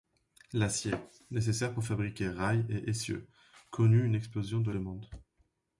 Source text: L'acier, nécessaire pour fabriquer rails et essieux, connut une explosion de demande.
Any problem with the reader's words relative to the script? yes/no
no